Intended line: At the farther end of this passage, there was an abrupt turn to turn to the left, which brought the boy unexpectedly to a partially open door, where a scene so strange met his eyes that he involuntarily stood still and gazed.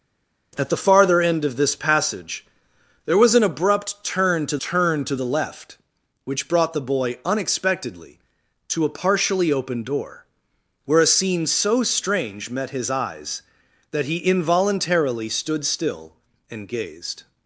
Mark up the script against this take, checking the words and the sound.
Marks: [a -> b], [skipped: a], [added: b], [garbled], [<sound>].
At the farther end of this passage, there was an abrupt turn to turn to the left, which brought the boy unexpectedly to a partially open door, where a scene so strange met his eyes that he involuntarily stood still and gazed.